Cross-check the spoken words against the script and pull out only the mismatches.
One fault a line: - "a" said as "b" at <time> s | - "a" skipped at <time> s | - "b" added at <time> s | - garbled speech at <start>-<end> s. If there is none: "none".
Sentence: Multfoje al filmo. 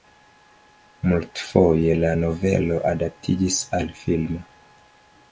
- "la novelo adaptiĝis" added at 2.0 s